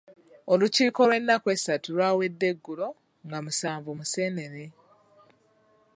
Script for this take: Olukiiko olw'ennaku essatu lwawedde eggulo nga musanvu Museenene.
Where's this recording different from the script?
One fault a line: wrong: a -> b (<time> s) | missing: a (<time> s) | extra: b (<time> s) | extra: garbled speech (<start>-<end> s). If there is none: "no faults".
no faults